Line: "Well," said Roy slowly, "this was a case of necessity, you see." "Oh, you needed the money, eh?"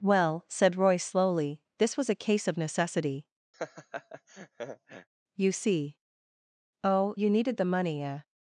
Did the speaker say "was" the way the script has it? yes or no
yes